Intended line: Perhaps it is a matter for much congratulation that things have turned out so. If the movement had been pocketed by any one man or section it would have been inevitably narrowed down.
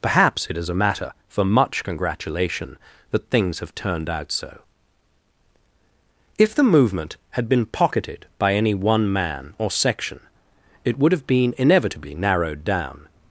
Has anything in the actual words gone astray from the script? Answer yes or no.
no